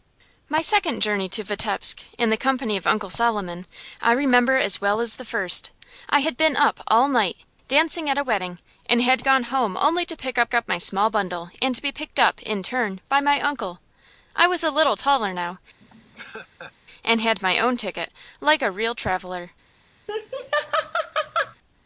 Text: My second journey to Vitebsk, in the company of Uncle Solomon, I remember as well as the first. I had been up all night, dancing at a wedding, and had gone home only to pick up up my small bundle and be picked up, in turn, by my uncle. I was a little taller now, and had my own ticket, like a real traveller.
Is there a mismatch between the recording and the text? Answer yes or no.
no